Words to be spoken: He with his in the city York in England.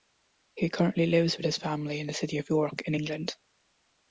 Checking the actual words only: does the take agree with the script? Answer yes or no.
no